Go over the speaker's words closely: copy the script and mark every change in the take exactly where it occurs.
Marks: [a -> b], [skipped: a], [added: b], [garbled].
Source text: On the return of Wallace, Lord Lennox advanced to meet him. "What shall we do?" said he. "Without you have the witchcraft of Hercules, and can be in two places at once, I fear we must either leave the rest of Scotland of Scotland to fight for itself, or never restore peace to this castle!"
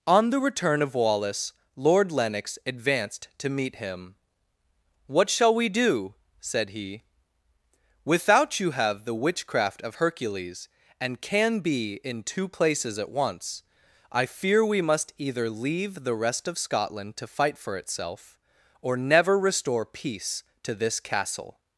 On the return of Wallace, Lord Lennox advanced to meet him. "What shall we do?" said he. "Without you have the witchcraft of Hercules, and can be in two places at once, I fear we must either leave the rest of Scotland [skipped: of Scotland] to fight for itself, or never restore peace to this castle!"